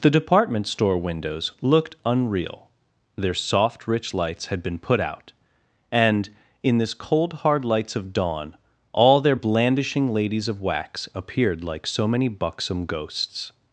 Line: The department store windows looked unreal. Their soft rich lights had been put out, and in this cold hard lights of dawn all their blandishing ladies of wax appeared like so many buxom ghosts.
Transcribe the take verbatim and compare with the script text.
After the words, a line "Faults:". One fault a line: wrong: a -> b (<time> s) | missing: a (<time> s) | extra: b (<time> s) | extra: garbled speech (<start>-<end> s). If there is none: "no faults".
The department store windows looked unreal. Their soft rich lights had been put out, and in this cold hard lights of dawn all their blandishing ladies of wax appeared like so many buxom ghosts.
Faults:
no faults